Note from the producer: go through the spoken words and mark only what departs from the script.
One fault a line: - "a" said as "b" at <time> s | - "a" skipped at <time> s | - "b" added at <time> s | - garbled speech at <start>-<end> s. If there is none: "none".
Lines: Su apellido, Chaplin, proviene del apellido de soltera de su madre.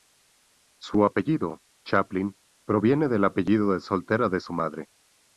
none